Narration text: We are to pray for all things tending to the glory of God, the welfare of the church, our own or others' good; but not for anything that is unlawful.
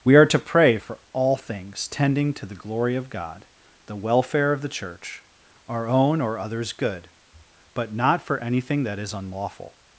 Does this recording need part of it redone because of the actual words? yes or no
no